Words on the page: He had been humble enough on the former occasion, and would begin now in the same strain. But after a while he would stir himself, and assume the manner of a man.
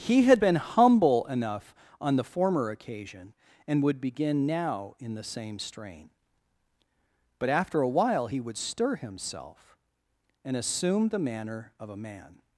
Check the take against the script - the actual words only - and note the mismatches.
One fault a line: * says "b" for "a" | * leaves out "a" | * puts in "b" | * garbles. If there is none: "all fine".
all fine